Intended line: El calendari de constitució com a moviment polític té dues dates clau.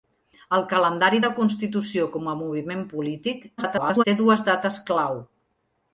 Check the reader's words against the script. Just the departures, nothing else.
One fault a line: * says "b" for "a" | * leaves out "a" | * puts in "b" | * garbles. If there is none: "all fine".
* garbles